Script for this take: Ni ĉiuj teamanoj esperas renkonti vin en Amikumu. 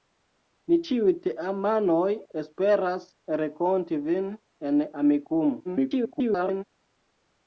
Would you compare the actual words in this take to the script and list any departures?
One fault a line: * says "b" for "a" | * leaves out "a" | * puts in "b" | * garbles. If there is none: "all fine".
* garbles